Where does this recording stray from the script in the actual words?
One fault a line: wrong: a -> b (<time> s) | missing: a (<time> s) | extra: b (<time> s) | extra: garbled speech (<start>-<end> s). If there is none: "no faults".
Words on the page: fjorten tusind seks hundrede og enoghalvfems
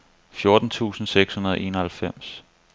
no faults